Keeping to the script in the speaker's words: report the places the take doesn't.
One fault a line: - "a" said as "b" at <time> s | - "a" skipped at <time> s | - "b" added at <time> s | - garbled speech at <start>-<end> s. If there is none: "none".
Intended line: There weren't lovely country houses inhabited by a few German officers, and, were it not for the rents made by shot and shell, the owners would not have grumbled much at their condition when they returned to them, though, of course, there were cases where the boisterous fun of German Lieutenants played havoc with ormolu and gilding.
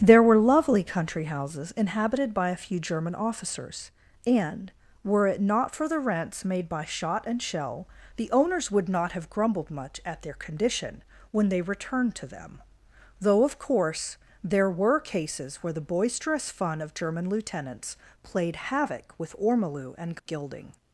- "weren't" said as "were" at 0.2 s